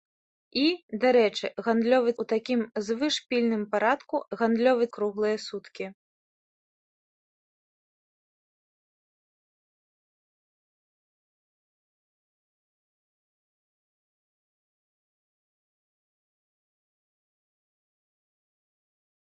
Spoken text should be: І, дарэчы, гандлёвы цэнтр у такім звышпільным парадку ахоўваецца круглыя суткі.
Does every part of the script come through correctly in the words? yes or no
no